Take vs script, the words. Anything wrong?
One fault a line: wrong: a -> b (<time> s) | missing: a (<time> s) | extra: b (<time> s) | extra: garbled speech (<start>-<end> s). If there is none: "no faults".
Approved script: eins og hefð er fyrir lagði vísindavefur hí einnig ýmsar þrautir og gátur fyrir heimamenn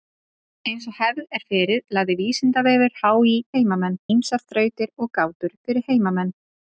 wrong: einnig -> heimamenn (3.6 s)